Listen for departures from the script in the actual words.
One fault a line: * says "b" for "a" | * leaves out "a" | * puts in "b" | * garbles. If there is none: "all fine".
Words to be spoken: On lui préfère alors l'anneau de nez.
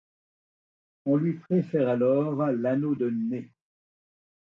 all fine